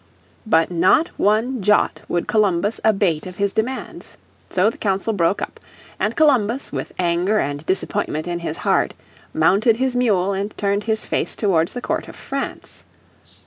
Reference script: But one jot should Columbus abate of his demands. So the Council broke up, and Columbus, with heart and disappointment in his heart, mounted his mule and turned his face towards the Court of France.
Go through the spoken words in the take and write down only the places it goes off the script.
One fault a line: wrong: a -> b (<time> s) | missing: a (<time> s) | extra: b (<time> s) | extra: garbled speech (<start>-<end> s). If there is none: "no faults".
extra: not (0.7 s)
wrong: should -> would (2.1 s)
wrong: heart -> anger (7.0 s)